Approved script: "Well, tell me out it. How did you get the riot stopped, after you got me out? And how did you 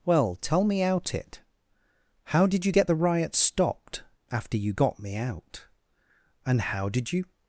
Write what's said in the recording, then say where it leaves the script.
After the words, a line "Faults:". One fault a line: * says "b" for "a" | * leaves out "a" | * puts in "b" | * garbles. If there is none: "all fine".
"Well, tell me out it. How did you get the riot stopped, after you got me out? And how did you
Faults:
all fine